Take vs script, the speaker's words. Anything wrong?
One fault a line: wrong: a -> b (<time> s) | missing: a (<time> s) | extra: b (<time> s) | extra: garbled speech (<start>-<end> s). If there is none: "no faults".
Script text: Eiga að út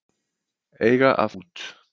no faults